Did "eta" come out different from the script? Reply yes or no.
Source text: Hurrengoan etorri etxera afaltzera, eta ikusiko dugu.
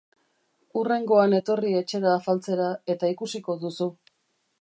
no